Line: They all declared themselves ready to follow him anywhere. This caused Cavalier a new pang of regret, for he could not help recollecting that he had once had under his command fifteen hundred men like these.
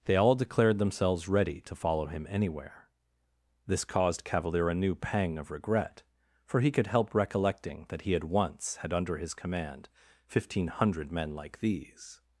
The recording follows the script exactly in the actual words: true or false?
false